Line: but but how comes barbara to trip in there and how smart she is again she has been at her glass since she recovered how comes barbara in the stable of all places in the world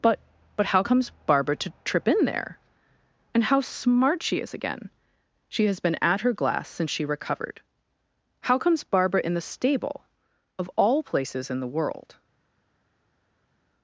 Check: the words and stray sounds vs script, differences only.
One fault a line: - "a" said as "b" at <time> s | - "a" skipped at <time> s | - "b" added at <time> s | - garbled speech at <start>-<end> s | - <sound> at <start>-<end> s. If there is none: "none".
none